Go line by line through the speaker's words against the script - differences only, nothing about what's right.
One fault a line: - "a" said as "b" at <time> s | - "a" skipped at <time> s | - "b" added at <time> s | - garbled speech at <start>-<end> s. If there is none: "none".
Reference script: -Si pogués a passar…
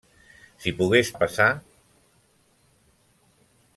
none